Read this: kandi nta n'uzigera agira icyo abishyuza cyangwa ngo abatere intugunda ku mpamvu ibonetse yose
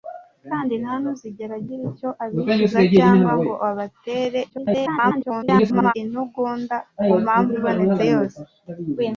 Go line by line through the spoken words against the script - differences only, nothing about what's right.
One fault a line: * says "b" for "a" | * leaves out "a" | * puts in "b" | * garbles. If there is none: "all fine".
* garbles